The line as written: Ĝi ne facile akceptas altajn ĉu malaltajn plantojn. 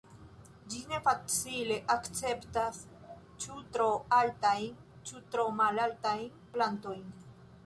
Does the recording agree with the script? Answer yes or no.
no